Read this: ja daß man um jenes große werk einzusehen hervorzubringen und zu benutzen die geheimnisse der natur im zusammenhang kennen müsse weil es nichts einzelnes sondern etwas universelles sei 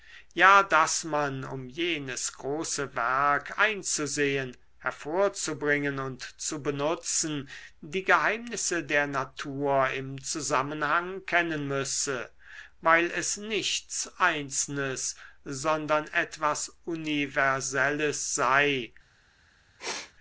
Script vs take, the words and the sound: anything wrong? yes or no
yes